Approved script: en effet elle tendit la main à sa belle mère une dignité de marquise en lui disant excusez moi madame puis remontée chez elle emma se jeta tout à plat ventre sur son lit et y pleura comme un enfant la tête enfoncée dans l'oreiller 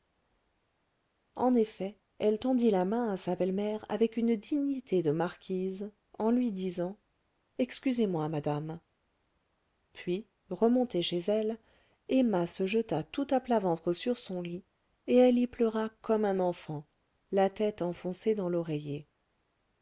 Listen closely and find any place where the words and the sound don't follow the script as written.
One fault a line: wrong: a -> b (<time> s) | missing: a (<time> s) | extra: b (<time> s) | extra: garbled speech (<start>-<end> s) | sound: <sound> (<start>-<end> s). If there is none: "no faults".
extra: avec (3.9 s)
extra: elle (15.2 s)